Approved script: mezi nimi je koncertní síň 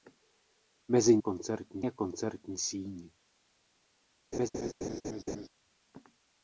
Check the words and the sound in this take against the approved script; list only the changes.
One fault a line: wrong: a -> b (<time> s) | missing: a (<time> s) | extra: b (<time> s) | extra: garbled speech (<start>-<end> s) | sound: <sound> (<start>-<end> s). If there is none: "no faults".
wrong: nimi -> koncertní (1.2 s)
sound: laugh (4.3-5.5 s)